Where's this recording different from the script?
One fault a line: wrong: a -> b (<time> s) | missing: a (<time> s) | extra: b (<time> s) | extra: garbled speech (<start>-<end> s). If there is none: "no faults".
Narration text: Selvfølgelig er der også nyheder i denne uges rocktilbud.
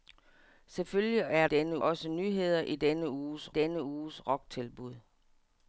wrong: der -> denne (1.4 s)
extra: denne uges (3.5 s)